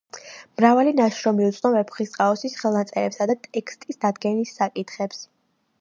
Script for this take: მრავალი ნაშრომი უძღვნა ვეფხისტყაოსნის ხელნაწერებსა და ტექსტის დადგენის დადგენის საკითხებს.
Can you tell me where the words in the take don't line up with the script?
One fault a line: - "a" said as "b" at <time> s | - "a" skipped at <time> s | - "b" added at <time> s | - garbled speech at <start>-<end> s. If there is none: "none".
- "დადგენის" skipped at 4.6 s